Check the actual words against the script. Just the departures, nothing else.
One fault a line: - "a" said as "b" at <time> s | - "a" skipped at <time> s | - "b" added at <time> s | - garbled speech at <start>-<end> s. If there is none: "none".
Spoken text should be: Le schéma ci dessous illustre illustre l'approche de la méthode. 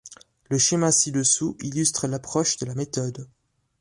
- "illustre" skipped at 2.1 s